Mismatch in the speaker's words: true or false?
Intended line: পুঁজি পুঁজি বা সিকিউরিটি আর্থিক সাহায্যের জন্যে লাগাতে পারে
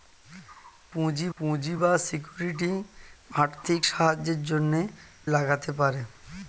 false